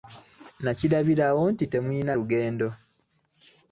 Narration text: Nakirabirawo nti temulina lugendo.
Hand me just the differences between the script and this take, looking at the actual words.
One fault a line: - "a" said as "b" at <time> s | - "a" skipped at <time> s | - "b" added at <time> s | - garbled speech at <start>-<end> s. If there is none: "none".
none